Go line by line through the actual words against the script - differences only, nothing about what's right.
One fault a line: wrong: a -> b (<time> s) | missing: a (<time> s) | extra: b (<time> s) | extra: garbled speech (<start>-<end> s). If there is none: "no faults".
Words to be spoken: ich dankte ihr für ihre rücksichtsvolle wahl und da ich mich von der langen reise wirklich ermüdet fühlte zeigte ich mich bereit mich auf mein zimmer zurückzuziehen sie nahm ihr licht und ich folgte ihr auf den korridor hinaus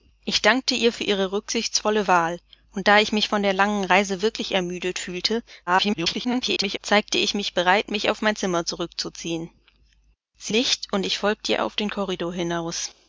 extra: garbled speech (5.7-6.8 s)
missing: nahm ihr (10.5 s)